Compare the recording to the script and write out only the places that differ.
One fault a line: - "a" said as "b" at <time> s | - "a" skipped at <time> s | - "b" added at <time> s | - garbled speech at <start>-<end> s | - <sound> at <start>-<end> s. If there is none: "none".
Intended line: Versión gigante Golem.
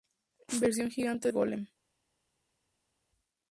none